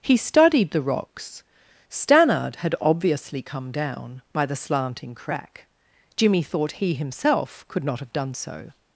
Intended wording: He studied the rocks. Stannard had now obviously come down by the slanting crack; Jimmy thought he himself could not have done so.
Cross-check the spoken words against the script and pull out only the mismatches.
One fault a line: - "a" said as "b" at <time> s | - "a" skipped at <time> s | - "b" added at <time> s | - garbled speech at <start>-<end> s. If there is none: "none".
- "now" skipped at 2.7 s